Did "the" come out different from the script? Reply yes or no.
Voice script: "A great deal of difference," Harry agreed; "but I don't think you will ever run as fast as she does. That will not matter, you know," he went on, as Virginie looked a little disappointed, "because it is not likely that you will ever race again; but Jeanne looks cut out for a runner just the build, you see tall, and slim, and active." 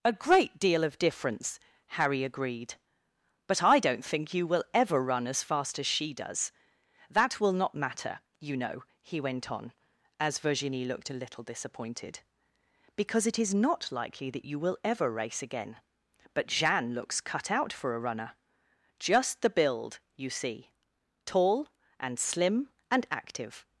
no